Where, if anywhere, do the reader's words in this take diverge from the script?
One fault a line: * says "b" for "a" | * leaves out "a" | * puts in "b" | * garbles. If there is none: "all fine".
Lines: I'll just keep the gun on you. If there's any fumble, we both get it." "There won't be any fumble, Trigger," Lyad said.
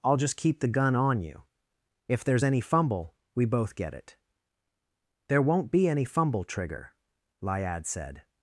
all fine